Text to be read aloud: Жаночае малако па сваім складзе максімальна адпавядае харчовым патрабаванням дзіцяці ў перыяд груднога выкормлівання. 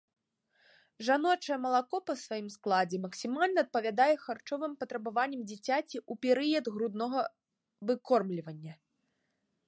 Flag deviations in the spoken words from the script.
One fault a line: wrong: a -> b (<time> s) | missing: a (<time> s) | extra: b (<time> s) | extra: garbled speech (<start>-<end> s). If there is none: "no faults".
no faults